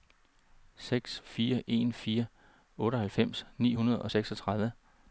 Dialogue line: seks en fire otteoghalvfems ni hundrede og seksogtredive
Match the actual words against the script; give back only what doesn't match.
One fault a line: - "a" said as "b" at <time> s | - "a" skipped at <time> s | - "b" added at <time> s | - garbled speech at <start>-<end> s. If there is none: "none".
- "fire" added at 1.2 s